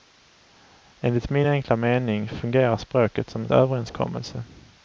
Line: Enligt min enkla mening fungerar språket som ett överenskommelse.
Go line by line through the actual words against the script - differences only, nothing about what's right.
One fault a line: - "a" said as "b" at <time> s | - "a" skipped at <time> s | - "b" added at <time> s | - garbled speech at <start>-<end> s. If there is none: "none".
none